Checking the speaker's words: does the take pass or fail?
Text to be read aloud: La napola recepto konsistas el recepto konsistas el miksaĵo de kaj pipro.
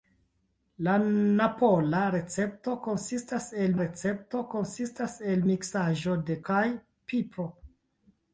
pass